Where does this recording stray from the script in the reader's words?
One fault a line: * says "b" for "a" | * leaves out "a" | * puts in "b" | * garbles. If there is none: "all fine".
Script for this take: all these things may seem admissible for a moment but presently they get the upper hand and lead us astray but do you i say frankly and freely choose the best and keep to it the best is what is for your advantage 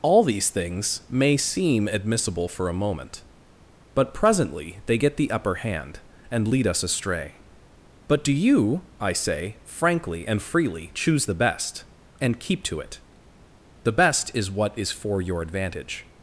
all fine